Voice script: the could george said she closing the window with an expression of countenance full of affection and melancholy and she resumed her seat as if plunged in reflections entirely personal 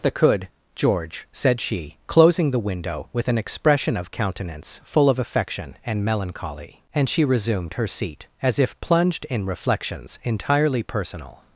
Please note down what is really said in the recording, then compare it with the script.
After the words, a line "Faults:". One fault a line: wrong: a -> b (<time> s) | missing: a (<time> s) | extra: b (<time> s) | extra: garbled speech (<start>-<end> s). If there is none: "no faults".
the could george said she closing the window with an expression of countenance full of affection and melancholy and she resumed her seat as if plunged in reflections entirely personal
Faults:
no faults